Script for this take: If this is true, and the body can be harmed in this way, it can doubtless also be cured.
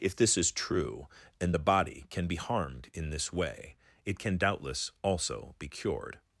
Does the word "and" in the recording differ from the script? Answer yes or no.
no